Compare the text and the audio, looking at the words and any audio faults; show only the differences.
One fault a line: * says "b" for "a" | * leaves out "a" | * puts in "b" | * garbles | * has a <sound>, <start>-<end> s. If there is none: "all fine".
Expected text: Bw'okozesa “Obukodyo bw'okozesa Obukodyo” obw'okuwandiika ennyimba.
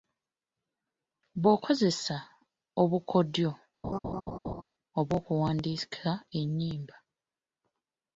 * leaves out "bw'okozesa Obukodyo"
* has a laugh, 3.8-4.6 s